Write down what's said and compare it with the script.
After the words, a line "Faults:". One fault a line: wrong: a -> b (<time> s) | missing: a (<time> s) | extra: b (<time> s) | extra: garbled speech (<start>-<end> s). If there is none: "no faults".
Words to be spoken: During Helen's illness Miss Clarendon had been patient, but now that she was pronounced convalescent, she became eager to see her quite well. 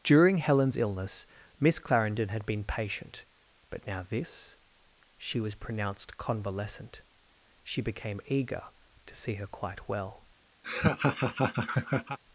During Helen's illness Miss Clarendon had been patient, but now this she was pronounced convalescent, she became eager to see her quite well.
Faults:
wrong: that -> this (4.0 s)